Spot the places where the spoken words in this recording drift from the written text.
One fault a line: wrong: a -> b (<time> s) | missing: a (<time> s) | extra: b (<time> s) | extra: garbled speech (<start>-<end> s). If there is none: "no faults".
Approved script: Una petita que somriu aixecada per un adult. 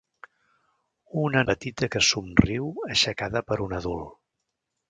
no faults